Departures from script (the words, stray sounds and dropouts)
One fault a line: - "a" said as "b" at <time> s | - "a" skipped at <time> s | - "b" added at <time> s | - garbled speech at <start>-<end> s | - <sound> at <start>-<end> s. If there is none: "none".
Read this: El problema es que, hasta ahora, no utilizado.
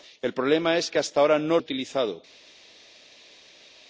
none